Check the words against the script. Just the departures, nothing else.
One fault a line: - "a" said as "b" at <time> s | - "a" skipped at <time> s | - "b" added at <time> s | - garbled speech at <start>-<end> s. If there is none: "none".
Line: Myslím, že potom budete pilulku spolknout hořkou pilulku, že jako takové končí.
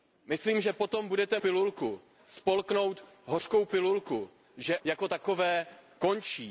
none